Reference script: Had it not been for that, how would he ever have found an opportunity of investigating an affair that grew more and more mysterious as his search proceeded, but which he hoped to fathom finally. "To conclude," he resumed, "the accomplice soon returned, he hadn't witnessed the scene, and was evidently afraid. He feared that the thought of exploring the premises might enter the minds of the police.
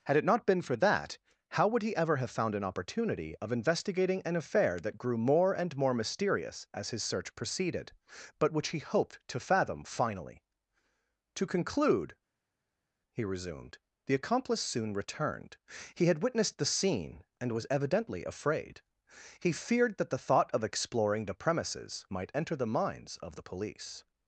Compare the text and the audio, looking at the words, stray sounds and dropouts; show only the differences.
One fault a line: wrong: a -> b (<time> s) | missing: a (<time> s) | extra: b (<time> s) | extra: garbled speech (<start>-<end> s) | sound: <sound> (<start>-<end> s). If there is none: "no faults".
wrong: hadn't -> had (16.1 s)